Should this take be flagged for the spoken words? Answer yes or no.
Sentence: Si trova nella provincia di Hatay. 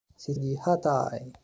yes